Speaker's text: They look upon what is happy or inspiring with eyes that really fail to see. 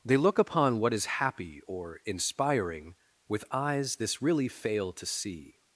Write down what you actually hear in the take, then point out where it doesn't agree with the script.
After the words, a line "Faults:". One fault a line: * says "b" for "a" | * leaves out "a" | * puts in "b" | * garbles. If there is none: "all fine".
They look upon what is happy or inspiring with eyes this really fail to see.
Faults:
* says "this" for "that"